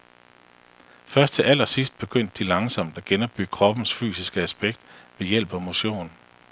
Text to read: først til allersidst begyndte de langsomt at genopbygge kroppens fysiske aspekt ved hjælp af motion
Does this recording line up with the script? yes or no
yes